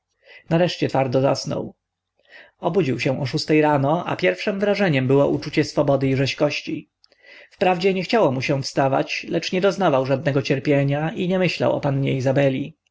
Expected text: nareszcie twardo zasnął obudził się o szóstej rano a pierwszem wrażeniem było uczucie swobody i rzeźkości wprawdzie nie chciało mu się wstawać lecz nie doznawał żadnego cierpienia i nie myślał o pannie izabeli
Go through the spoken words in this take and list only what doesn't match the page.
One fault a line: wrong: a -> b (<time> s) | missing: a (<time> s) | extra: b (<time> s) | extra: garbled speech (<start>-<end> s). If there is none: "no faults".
no faults